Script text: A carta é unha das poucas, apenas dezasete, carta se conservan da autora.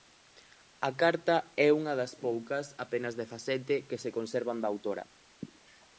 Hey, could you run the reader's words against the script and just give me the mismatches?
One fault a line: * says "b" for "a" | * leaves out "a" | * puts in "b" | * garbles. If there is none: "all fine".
* says "que" for "carta"